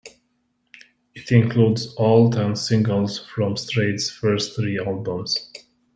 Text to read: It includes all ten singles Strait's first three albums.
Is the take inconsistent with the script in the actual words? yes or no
yes